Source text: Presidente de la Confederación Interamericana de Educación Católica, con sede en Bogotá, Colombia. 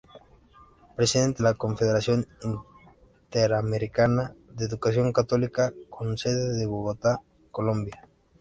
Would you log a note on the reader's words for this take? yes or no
yes